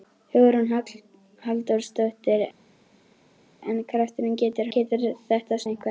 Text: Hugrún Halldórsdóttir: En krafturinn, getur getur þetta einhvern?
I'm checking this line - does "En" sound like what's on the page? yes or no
yes